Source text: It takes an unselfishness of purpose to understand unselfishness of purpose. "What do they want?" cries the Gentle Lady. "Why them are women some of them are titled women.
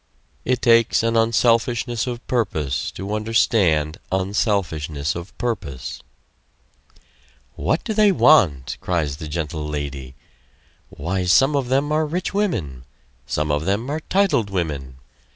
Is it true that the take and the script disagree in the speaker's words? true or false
true